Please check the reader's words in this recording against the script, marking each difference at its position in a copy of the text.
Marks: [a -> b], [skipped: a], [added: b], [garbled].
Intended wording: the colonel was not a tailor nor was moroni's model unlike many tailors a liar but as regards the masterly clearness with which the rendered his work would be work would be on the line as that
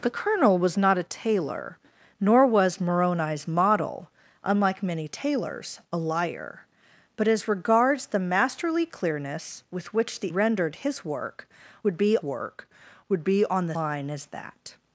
the colonel was not a tailor nor was moroni's model unlike many tailors a liar but as regards the masterly clearness with which the rendered his work would be work would be on the line as that